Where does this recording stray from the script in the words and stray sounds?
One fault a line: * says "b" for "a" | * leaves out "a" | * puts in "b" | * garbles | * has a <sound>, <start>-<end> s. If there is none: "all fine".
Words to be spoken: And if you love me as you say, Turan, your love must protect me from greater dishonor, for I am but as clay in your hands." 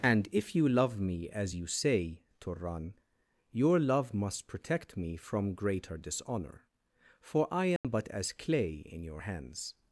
* has a dropout, 7.8-7.8 s